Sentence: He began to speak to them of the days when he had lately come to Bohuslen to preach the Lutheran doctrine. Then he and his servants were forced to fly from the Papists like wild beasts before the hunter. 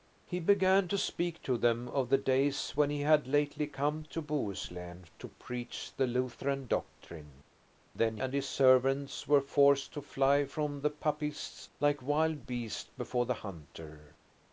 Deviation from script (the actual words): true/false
true